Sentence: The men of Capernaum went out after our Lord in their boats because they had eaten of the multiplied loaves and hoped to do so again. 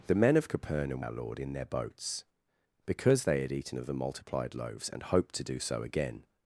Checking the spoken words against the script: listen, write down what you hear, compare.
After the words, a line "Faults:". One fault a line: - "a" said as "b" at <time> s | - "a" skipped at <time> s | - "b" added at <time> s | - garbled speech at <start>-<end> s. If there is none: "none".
The men of Capernaum our Lord in their boats because they had eaten of the multiplied loaves and hoped to do so again.
Faults:
- "went out after" skipped at 1.0 s